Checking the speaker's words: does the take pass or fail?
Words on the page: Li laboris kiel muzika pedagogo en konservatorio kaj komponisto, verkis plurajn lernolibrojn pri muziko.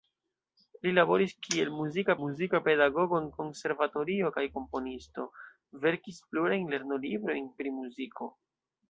fail